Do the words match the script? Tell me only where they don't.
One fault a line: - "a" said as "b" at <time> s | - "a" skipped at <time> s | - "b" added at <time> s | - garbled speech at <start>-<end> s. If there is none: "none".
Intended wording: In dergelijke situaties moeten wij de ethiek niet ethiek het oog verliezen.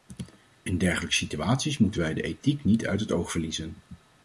- "ethiek" said as "uit" at 2.9 s